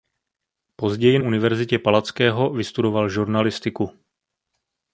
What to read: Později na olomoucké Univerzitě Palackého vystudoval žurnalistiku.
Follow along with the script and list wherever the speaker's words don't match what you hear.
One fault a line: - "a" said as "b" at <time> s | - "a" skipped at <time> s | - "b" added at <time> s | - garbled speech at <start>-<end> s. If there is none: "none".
- "na olomoucké" skipped at 1.2 s